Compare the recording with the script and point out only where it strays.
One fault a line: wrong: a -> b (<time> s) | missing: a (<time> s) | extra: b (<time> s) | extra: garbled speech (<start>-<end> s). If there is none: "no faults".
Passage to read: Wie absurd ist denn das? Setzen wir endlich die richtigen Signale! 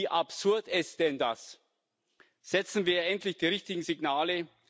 no faults